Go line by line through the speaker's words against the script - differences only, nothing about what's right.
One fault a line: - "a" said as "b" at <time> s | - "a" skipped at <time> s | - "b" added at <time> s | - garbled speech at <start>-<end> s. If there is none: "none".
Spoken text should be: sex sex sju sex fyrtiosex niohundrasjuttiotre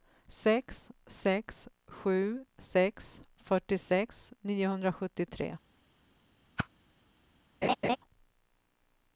none